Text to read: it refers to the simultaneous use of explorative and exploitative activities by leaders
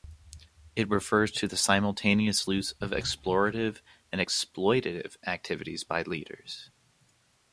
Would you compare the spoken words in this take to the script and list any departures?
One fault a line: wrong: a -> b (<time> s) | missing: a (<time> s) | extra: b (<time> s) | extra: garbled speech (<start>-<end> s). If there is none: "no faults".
no faults